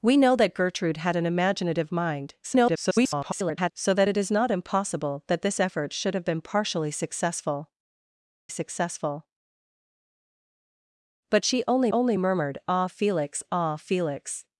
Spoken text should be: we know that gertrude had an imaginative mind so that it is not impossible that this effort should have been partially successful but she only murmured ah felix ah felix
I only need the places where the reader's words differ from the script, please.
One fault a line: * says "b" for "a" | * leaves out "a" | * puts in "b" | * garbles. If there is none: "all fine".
* garbles
* puts in "successful"
* puts in "only"